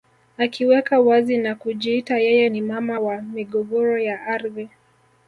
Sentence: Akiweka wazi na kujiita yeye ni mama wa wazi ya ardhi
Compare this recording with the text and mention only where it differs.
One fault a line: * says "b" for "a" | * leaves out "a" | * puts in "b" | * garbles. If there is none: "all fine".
* says "migogoro" for "wazi"